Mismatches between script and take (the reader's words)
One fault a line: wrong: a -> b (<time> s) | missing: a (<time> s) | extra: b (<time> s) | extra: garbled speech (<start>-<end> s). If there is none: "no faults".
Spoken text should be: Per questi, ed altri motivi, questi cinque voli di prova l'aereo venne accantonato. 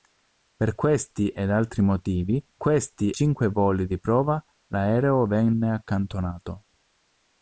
no faults